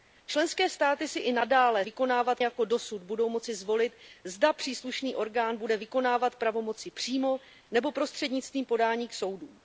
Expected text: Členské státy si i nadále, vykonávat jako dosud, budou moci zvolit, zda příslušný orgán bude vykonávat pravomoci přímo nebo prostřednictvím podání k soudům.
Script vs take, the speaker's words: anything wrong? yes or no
no